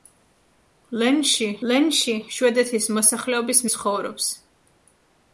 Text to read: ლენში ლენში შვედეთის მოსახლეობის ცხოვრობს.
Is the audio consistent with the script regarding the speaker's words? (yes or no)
yes